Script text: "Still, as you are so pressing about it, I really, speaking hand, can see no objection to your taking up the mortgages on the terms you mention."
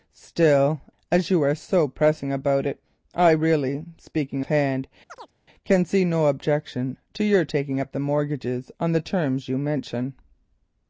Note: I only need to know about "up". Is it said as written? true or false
true